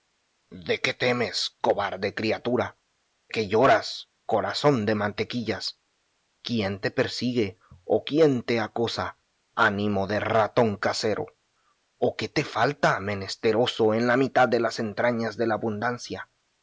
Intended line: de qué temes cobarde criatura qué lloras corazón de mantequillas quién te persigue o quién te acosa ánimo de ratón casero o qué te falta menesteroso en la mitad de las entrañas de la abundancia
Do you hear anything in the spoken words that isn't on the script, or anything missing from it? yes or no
no